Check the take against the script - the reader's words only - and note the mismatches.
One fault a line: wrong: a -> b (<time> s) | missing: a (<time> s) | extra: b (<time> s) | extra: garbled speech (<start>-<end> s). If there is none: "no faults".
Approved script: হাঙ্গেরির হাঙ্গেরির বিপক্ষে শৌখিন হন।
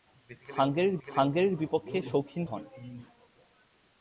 no faults